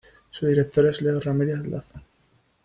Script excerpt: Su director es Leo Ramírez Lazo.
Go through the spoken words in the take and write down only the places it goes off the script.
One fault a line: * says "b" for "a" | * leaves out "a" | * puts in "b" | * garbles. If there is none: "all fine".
all fine